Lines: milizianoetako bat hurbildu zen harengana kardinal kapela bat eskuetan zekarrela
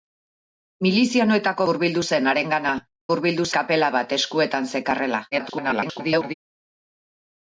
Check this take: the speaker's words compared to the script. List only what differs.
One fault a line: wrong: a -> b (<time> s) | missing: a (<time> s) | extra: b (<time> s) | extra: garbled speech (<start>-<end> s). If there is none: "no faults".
missing: bat (1.7 s)
wrong: kardinal -> hurbildu (3.1 s)
extra: garbled speech (5.3-6.3 s)